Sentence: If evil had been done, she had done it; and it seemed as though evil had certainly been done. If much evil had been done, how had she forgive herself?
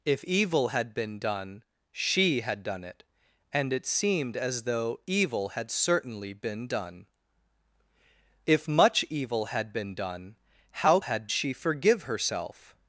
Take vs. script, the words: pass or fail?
pass